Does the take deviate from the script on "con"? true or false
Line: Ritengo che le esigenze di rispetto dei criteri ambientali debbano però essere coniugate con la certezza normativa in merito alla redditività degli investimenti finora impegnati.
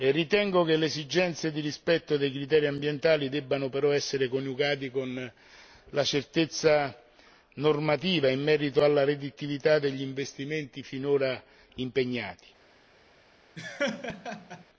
false